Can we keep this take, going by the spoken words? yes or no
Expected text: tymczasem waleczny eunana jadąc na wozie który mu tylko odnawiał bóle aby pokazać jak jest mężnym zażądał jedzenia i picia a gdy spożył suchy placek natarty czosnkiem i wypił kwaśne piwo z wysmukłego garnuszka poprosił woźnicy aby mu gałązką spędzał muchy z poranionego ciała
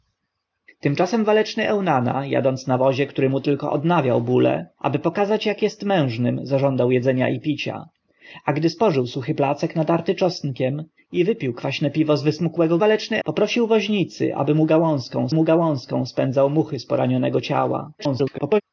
no